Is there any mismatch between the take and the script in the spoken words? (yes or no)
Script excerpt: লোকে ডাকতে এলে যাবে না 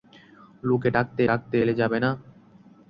yes